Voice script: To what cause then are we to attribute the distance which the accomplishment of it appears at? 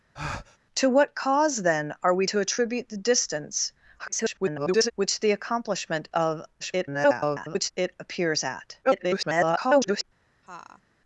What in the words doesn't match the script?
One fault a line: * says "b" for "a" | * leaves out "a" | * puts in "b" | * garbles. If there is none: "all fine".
* garbles
* garbles
* garbles